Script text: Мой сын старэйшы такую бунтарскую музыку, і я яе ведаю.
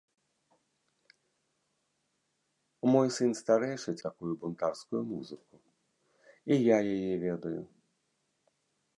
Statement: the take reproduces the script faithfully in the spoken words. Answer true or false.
true